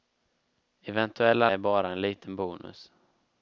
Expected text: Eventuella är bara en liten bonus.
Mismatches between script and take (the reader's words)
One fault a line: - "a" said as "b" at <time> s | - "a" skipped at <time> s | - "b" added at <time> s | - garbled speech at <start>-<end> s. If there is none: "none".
none